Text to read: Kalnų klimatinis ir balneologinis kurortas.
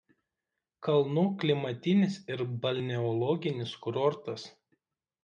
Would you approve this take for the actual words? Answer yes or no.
yes